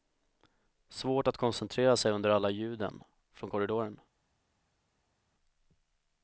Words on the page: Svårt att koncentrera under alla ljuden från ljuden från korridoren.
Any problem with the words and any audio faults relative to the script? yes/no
yes